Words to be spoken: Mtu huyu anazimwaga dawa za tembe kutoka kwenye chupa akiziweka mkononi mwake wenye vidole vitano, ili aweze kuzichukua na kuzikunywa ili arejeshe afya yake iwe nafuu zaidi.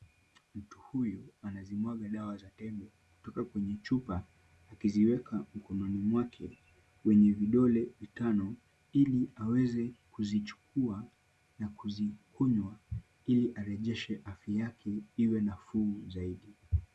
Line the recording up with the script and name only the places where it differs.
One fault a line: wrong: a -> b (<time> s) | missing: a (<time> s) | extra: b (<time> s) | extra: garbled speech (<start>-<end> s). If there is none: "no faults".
no faults